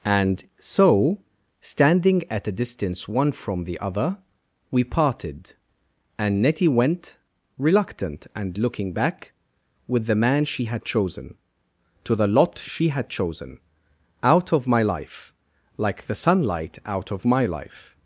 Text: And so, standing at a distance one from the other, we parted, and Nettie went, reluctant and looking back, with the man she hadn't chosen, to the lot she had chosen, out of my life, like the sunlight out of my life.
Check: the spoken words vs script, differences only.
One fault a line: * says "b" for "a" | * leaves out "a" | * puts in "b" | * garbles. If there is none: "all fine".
* says "had" for "hadn't"